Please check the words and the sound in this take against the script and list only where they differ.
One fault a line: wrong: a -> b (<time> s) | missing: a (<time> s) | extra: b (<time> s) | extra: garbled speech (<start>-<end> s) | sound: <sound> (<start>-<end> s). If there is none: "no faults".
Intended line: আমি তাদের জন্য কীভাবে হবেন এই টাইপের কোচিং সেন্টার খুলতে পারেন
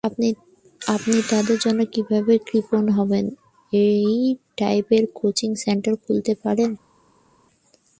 wrong: আমি -> আপনি (0.8 s)
extra: কৃপণ (2.5 s)